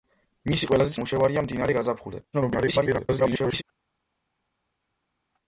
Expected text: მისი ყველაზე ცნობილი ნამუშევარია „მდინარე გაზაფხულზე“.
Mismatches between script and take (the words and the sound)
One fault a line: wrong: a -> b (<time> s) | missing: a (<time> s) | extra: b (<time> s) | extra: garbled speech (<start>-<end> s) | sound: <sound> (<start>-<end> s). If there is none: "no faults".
missing: ცნობილი (0.9 s)
extra: garbled speech (2.3-3.6 s)